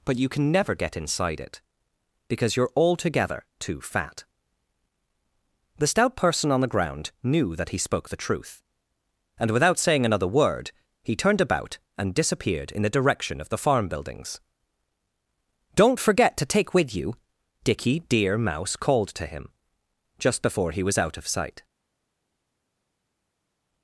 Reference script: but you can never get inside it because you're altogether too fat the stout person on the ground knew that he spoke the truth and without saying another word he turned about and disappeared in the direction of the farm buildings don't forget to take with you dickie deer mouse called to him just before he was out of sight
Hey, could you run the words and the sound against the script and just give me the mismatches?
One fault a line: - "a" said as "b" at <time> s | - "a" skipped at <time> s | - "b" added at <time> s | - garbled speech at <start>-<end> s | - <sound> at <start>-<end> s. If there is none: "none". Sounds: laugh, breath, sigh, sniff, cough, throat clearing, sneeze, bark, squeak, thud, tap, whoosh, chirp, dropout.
none